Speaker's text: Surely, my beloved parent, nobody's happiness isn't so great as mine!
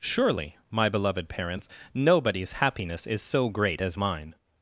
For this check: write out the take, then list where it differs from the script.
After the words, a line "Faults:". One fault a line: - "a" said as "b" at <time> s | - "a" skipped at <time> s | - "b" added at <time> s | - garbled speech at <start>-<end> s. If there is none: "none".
Surely, my beloved parents, nobody's happiness is so great as mine!
Faults:
- "parent" said as "parents" at 1.3 s
- "isn't" said as "is" at 3.0 s